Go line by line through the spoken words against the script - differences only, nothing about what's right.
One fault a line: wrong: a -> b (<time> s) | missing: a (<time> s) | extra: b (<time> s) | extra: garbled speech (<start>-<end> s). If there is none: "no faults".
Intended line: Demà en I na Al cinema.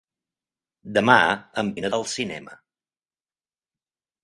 no faults